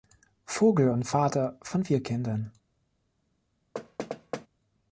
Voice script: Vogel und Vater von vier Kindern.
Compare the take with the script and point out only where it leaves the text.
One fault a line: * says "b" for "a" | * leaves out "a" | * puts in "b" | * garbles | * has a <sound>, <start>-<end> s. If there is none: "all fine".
* has a thud, 3.7-4.5 s